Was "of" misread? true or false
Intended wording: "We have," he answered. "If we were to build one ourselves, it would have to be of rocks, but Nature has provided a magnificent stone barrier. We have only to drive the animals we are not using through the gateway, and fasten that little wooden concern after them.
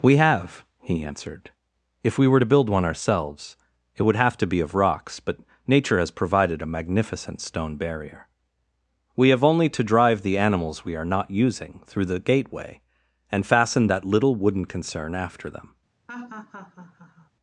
false